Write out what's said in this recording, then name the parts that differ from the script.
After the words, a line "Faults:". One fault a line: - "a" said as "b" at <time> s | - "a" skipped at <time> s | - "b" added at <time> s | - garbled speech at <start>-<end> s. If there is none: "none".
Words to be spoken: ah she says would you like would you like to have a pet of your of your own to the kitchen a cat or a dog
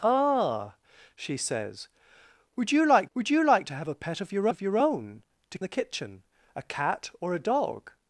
ah she says would you like would you like to have a pet of your of your own to the kitchen a cat or a dog
Faults:
none